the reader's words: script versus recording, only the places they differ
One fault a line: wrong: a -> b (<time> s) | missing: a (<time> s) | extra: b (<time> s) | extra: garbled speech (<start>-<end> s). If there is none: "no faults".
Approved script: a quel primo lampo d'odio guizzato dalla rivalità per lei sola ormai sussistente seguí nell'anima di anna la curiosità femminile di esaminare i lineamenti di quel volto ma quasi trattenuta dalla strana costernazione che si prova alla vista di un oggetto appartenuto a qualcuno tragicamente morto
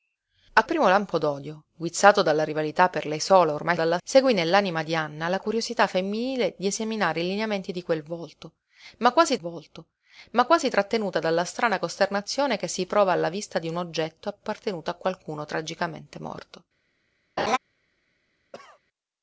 missing: quel (0.7 s)
wrong: sussistente -> dalla (3.7 s)
extra: volto ma quasi (9.4 s)